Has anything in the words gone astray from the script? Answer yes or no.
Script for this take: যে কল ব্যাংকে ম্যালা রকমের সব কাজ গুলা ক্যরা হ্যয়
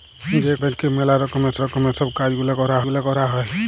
yes